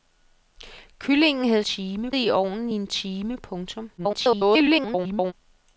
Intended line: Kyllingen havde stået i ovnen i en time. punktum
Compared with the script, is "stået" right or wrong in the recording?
wrong